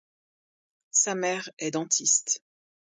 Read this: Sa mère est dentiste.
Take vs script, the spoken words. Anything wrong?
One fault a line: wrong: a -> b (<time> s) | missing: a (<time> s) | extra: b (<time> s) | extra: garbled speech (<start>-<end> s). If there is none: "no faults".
no faults